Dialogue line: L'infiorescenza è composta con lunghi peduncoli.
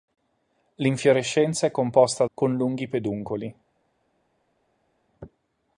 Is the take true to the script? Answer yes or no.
yes